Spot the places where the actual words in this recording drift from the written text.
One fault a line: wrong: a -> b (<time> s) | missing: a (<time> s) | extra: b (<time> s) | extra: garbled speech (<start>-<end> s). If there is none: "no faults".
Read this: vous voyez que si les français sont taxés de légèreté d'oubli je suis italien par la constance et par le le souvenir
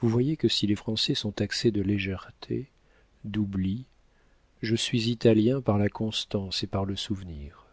missing: le (7.0 s)